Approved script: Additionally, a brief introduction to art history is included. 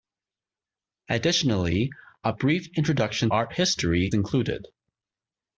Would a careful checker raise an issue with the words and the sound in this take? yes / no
yes